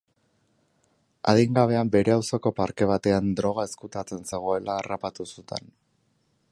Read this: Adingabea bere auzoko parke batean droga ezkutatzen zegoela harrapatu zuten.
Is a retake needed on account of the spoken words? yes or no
no